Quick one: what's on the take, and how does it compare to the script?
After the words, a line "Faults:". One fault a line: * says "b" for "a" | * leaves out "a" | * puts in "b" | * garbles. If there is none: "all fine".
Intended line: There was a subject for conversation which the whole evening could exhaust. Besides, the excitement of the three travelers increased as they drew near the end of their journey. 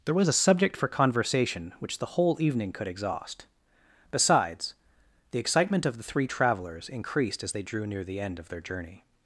There was a subject for conversation which the whole evening could exhaust. Besides, the excitement of the three travelers increased as they drew near the end of their journey.
Faults:
all fine